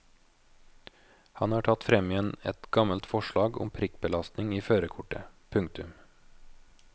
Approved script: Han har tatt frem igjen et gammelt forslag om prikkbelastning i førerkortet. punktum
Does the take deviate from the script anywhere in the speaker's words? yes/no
no